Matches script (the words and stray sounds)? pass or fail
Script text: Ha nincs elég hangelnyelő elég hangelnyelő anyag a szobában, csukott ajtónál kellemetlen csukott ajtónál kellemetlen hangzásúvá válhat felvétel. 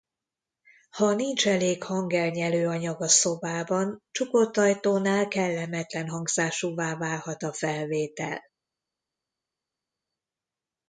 fail